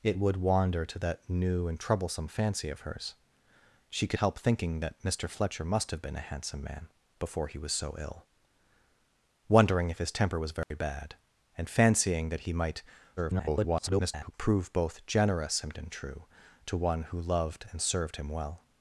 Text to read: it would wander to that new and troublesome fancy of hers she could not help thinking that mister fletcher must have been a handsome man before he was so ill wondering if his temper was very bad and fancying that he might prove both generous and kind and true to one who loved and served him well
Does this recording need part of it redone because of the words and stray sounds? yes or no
yes